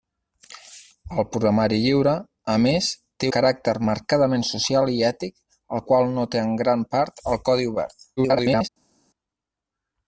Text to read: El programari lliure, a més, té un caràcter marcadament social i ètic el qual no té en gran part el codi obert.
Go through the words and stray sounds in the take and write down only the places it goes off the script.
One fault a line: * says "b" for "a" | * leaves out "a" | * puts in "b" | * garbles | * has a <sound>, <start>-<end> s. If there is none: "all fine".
* leaves out "un"
* garbles